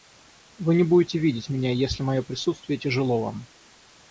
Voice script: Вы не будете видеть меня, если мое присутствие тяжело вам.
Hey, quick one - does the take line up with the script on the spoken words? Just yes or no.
yes